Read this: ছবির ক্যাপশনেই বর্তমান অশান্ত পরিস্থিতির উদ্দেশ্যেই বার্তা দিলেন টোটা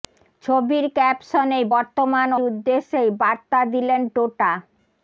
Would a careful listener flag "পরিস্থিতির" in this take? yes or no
yes